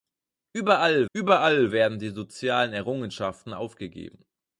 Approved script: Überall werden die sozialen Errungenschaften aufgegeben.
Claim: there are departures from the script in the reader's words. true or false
true